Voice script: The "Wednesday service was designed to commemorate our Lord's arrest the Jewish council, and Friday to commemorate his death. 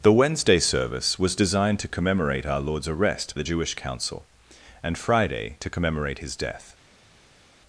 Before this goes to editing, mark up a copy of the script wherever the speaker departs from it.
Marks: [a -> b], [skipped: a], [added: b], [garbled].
The "Wednesday service was designed to commemorate our Lord's arrest the Jewish council, and Friday to commemorate his death.